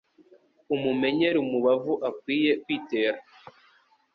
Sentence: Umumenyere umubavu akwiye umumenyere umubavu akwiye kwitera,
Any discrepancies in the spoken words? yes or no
yes